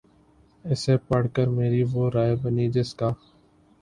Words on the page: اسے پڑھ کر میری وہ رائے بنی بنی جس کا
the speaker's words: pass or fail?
fail